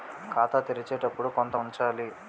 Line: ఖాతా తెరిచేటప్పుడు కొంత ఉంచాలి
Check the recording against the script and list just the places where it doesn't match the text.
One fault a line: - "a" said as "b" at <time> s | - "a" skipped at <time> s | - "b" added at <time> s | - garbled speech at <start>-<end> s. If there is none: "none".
none